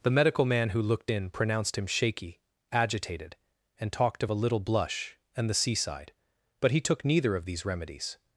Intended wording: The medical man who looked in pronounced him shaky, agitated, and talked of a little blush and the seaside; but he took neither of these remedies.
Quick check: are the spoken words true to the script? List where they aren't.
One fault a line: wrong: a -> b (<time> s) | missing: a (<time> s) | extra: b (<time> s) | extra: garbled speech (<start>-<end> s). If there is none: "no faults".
no faults